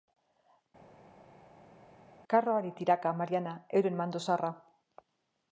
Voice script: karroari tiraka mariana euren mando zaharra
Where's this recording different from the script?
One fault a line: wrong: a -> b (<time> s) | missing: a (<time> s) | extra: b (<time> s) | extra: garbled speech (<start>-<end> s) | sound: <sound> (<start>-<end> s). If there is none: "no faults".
no faults